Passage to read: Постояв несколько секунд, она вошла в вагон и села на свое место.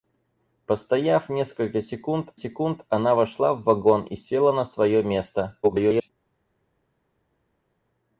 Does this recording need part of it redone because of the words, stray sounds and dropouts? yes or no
yes